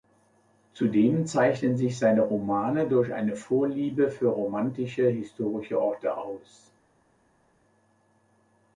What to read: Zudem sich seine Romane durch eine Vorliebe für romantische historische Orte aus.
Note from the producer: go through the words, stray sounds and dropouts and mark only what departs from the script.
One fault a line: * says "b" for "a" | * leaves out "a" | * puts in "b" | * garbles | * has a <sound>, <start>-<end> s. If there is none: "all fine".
* puts in "zeichnen"